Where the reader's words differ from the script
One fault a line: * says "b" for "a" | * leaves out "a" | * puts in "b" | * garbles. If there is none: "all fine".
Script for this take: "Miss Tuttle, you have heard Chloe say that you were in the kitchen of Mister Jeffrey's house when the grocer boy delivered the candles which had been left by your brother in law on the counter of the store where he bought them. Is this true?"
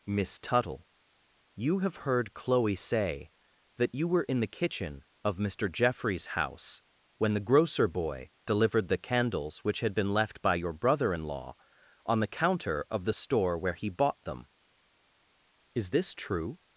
all fine